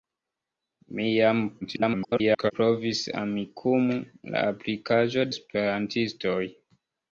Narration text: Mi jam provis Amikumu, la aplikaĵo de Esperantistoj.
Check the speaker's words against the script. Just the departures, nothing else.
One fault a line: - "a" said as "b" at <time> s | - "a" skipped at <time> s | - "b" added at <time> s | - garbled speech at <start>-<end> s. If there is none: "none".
- garbled speech at 1.6-2.5 s
- "de" skipped at 5.3 s